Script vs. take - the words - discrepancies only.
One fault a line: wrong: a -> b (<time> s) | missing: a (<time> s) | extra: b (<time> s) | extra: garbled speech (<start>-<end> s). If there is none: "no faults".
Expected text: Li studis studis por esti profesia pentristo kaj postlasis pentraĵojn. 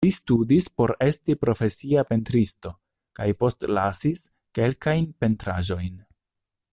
missing: studis (0.7 s)
extra: kelkajn (4.6 s)